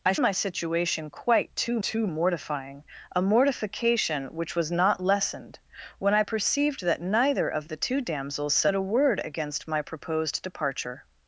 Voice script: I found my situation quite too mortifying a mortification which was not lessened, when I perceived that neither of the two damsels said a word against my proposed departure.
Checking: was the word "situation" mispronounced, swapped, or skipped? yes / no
no